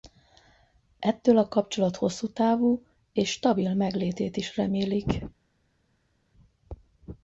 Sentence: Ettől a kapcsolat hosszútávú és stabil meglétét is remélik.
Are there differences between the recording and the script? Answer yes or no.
no